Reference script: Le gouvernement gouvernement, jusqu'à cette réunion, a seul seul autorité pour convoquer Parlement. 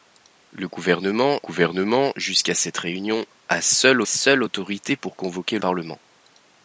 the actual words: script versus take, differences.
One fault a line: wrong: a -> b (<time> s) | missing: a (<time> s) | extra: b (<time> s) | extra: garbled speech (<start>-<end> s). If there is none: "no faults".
no faults